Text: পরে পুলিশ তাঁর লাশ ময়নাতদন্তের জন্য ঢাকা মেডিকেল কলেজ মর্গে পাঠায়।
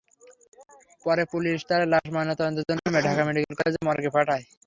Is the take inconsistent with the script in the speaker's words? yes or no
no